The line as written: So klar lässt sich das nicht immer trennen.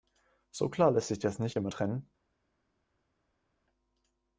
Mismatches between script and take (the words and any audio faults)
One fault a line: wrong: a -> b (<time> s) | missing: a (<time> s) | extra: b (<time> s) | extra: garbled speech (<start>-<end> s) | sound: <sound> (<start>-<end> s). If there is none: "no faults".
no faults